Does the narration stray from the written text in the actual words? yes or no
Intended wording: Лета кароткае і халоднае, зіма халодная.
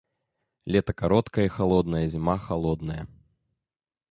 no